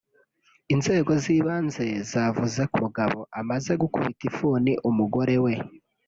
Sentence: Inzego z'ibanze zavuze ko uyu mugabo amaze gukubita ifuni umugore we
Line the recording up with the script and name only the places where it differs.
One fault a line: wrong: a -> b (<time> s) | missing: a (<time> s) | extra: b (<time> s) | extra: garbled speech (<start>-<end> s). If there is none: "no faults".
missing: uyu (2.8 s)